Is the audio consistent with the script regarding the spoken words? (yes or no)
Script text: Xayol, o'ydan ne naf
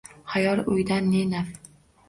yes